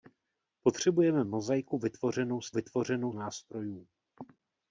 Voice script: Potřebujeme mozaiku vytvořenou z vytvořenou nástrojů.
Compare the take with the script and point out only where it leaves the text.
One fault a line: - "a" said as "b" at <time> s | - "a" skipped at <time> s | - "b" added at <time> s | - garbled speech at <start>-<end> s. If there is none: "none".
none